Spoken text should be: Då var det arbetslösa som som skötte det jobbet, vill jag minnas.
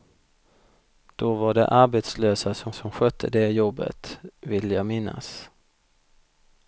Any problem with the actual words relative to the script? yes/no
no